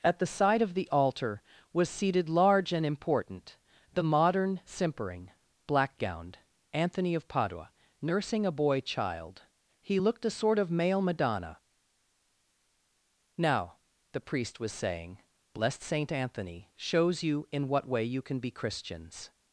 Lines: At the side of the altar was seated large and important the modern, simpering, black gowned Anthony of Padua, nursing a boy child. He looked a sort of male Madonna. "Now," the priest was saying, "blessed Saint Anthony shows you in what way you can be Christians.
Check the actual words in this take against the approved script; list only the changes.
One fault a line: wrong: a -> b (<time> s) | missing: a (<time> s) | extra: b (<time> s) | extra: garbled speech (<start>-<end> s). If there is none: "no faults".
no faults